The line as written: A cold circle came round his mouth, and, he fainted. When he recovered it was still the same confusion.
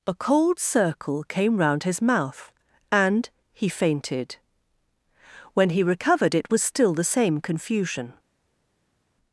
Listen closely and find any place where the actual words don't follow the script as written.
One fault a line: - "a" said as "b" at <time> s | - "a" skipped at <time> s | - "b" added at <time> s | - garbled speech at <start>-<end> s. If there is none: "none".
none